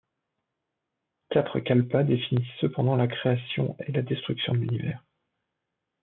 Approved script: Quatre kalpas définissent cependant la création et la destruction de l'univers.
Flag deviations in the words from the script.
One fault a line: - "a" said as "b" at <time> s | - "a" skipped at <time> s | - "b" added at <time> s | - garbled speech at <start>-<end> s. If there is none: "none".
none